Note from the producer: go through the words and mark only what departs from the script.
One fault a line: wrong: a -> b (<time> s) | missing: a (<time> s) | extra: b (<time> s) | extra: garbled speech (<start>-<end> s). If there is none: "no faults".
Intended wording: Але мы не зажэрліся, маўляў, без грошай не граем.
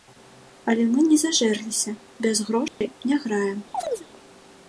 missing: маўляў (1.9 s)